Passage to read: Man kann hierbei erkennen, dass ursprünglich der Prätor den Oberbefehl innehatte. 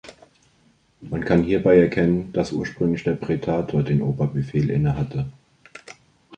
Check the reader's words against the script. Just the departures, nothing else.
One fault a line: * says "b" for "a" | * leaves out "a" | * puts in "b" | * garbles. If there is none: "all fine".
all fine